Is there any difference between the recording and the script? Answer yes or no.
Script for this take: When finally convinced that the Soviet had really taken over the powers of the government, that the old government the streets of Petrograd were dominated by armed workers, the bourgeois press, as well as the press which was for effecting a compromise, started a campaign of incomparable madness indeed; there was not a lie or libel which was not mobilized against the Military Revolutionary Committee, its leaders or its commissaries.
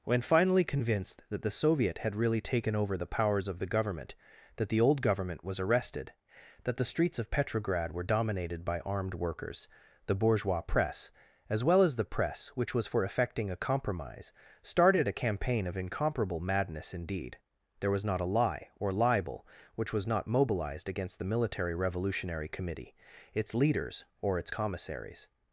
yes